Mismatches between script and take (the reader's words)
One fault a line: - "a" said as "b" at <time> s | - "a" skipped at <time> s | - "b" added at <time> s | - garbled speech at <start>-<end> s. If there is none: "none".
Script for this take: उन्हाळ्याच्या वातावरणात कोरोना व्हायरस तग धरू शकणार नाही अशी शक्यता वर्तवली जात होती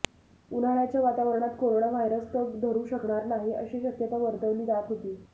none